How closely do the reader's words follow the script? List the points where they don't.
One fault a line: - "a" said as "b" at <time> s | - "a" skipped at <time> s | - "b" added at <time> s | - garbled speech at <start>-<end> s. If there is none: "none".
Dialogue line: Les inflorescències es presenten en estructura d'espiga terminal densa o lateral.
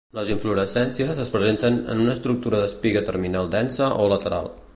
- "una" added at 2.1 s